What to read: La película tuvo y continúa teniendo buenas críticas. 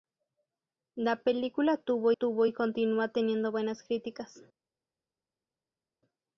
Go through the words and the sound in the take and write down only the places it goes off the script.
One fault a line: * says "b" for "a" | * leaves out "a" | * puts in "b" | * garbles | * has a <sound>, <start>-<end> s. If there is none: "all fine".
* puts in "tuvo"